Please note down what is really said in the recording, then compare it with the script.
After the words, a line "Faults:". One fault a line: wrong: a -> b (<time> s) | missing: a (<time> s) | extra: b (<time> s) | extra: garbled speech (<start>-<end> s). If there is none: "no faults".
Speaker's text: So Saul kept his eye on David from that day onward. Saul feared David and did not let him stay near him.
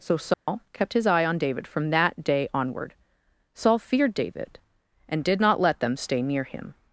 So Saul kept his eye on David from that day onward. Saul feared David and did not let them stay near him.
Faults:
wrong: him -> them (5.8 s)